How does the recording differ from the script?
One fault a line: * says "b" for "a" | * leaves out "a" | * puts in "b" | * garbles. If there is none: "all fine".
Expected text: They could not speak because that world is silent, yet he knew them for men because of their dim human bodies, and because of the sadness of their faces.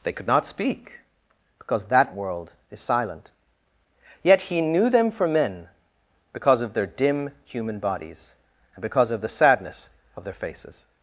all fine